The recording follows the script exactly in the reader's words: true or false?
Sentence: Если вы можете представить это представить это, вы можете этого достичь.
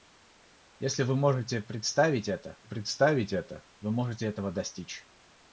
true